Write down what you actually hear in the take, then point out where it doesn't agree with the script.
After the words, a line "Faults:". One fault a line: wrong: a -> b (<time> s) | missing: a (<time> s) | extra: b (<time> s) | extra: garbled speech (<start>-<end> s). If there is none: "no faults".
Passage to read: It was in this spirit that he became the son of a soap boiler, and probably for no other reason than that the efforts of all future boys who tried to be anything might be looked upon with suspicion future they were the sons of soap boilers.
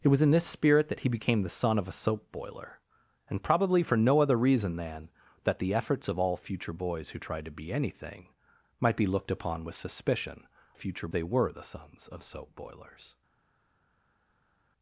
It was in this spirit that he became the son of a soap boiler, and probably for no other reason than that the efforts of all future boys who tried to be anything might be looked upon with suspicion future they were the sons of soap boilers.
Faults:
no faults